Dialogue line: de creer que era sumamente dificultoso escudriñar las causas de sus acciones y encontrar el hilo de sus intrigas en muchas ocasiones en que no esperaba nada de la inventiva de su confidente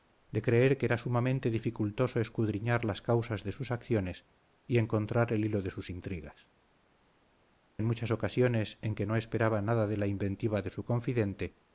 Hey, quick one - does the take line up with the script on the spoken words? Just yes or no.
yes